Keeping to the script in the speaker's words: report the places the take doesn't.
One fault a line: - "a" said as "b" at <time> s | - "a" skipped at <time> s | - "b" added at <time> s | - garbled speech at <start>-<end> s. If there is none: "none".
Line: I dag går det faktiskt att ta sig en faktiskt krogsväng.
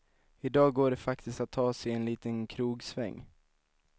- "faktiskt" said as "liten" at 2.0 s